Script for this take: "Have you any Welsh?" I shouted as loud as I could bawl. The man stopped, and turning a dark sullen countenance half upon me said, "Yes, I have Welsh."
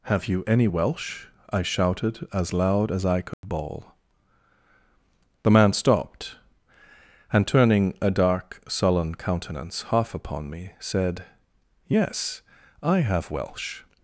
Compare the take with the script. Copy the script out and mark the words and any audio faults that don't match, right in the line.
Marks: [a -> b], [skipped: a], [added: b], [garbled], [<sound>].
"Have you any Welsh?" I shouted as loud as I could [dropout] bawl. The man stopped, and turning a dark sullen countenance half upon me said, "Yes, I have Welsh."